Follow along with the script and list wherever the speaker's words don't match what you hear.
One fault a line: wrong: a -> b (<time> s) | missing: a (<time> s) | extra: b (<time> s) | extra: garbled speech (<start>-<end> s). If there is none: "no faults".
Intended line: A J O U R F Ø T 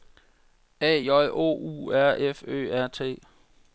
extra: R (2.7 s)